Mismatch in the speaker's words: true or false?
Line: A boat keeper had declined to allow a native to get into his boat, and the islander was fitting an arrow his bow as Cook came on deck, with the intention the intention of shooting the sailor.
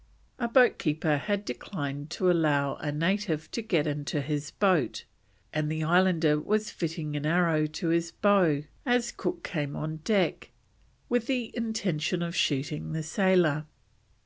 true